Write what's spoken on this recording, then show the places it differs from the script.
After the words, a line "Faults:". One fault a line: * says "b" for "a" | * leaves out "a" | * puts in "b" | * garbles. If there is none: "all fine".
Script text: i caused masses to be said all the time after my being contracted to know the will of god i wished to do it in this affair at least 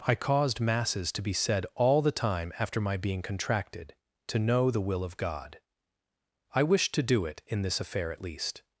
i caused masses to be said all the time after my being contracted to know the will of god i wished to do it in this affair at least
Faults:
all fine